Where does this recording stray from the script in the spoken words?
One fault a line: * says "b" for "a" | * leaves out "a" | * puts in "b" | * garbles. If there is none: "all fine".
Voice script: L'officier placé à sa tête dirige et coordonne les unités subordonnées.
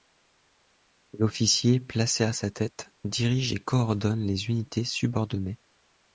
all fine